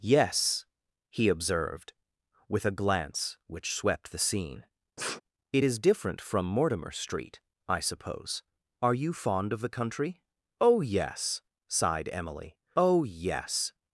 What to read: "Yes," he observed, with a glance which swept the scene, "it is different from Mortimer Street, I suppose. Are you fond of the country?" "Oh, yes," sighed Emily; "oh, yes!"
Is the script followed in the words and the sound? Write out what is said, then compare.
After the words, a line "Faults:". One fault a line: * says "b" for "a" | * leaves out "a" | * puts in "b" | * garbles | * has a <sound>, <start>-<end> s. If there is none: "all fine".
"Yes," he observed, with a glance which swept the scene, "it is different from Mortimer Street, I suppose. Are you fond of the country?" "Oh, yes," sighed Emily; "oh, yes!"
Faults:
* has a sniff, 5.0-5.2 s